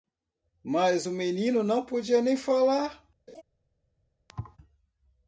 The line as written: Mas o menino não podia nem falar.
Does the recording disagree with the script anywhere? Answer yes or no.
no